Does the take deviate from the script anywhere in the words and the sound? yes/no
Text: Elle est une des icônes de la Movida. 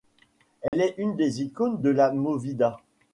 yes